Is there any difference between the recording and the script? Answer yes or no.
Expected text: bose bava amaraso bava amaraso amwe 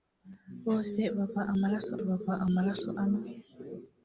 no